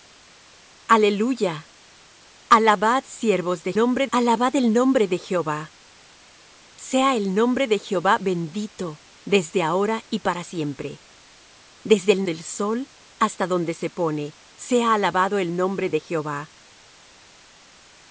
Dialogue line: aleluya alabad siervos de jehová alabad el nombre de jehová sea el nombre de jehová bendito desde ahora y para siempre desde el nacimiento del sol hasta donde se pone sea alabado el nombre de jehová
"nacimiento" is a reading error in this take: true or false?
true